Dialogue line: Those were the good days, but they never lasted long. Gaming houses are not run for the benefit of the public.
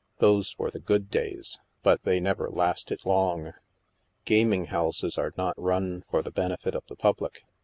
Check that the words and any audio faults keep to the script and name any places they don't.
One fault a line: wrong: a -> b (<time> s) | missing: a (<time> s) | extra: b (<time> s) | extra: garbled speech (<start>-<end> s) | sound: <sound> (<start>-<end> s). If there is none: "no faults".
no faults